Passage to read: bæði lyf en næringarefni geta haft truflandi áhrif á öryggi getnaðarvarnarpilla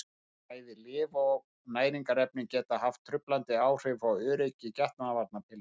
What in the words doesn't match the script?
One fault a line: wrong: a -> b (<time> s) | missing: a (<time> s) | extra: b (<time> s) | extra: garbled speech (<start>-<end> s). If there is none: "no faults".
wrong: en -> og (1.2 s)